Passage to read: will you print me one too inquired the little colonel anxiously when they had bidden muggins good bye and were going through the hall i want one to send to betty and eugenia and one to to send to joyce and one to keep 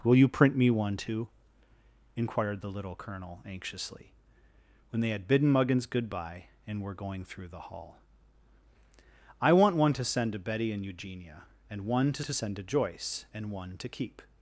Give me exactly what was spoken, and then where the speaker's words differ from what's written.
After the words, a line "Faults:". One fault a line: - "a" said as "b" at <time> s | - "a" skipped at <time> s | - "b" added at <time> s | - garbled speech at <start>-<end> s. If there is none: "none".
will you print me one too inquired the little colonel anxiously when they had bidden muggins good bye and were going through the hall i want one to send to betty and eugenia and one to to send to joyce and one to keep
Faults:
none